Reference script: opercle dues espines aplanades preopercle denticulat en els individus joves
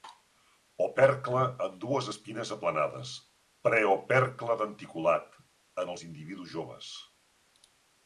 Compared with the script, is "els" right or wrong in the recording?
right